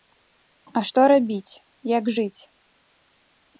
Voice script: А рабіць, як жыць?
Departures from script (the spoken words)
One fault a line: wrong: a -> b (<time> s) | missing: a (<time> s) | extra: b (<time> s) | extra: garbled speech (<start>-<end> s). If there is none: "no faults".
extra: што (0.9 s)